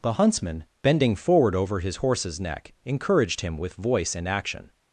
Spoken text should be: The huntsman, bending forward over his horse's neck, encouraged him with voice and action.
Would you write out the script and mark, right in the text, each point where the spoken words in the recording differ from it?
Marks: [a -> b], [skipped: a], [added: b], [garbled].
The huntsman, bending forward over his horse's neck, encouraged him with voice and action.